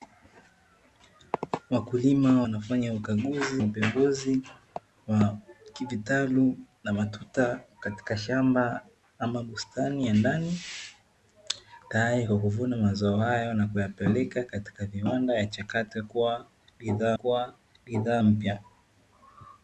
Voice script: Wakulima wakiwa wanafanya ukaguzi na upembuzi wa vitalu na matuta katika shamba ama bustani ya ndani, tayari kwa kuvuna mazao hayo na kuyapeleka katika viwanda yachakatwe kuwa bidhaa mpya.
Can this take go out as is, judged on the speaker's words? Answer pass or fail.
fail